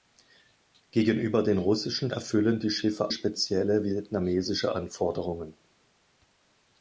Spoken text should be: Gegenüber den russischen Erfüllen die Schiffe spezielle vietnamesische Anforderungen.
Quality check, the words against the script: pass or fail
pass